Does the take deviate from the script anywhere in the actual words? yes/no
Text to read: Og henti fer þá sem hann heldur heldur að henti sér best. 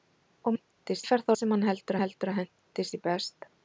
no